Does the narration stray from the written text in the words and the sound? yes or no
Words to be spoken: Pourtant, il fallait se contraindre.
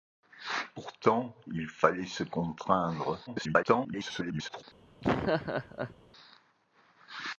yes